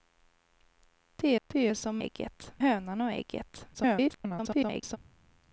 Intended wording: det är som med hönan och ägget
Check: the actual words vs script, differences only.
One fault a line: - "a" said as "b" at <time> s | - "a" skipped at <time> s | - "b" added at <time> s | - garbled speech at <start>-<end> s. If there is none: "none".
- "det" added at 1.5 s
- "med" said as "ägget" at 2.0 s
- garbled speech at 3.7-5.0 s